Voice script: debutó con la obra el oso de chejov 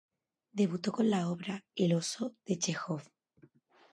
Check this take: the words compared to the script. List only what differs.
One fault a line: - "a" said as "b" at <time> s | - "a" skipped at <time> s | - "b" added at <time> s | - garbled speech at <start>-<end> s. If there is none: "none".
none